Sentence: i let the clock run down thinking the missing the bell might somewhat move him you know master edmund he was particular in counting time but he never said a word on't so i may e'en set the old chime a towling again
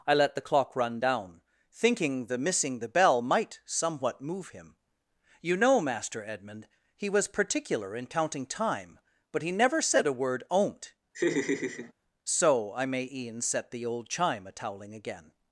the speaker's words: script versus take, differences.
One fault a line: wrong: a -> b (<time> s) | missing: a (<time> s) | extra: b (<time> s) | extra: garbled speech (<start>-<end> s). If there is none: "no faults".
no faults